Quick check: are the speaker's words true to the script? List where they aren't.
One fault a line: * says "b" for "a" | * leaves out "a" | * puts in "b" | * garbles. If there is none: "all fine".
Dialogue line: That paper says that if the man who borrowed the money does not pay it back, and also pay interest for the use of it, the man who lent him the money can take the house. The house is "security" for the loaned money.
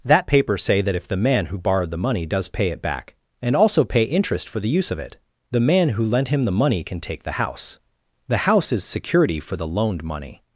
* says "say" for "says"
* leaves out "not"